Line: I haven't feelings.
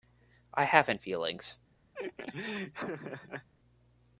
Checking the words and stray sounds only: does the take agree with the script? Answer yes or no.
no